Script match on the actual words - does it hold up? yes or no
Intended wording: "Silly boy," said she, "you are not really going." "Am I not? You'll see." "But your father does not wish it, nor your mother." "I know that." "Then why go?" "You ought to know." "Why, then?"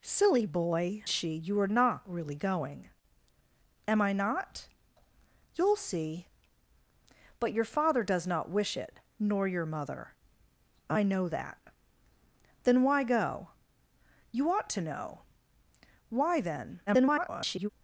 no